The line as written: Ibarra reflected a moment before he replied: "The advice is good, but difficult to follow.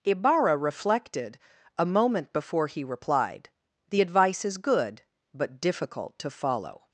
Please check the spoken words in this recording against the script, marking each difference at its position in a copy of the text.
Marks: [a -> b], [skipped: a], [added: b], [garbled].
Ibarra reflected a moment before he replied: "The advice is good, but difficult to follow.